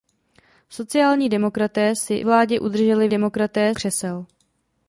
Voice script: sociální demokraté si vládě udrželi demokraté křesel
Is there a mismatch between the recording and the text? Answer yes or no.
no